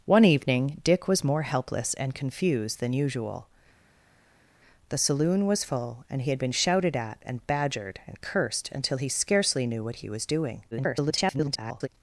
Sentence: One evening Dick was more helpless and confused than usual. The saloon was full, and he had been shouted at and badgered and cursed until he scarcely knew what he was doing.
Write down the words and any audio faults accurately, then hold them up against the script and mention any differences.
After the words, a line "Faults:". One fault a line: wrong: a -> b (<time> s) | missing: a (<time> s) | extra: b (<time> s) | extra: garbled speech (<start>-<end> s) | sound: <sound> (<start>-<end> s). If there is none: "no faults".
One evening Dick was more helpless and confused than usual. The saloon was full, and he had been shouted at and badgered and cursed until he scarcely knew what he was doing. [garbled]
Faults:
extra: garbled speech (10.7-11.9 s)